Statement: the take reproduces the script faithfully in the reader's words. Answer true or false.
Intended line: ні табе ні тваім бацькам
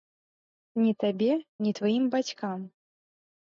true